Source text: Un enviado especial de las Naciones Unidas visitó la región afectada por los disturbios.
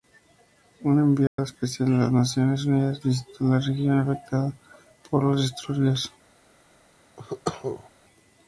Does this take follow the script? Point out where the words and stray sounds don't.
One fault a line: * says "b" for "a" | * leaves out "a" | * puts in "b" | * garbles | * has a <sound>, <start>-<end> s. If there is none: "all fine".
* has a dropout, 1.3-1.4 s
* has a cough, 7.2-7.9 s